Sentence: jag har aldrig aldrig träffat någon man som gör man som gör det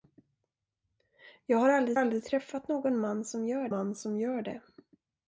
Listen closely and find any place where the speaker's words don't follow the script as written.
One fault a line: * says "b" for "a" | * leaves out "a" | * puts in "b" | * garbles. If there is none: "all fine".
all fine